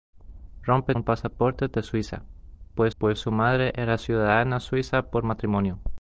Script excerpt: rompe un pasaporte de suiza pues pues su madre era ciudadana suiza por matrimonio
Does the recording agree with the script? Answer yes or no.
yes